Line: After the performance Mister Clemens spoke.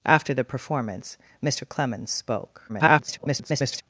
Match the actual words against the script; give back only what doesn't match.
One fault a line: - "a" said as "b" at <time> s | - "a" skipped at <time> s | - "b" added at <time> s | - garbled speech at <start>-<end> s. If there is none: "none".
- garbled speech at 2.7-3.8 s